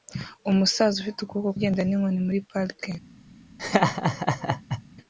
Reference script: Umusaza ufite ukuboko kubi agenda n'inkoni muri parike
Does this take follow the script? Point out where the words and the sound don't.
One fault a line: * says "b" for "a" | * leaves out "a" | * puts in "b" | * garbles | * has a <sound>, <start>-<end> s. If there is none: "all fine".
* leaves out "kubi"
* has a laugh, 3.6-4.8 s